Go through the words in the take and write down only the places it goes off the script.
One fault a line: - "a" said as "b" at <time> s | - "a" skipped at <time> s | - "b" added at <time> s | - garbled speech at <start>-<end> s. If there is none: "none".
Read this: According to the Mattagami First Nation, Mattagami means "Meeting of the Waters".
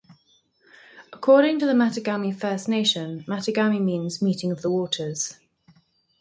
none